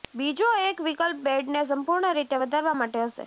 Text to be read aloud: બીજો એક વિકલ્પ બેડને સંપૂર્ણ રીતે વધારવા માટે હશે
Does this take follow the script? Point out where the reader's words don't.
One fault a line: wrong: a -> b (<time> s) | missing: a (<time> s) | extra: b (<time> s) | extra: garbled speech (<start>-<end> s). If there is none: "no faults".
no faults